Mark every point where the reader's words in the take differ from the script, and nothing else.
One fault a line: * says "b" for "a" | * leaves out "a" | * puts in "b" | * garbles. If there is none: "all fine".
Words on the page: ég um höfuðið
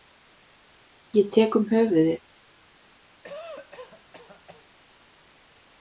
* puts in "tek"